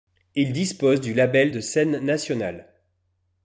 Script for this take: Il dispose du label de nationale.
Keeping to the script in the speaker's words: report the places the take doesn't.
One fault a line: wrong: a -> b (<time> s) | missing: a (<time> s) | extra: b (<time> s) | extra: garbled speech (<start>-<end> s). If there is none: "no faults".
extra: scène (1.6 s)